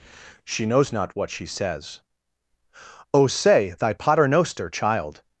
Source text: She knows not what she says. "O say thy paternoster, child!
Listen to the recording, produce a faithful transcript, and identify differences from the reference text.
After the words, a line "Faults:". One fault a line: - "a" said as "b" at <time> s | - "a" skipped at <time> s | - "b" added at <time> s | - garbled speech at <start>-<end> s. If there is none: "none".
She knows not what she says. "O say thy paternoster, child!
Faults:
none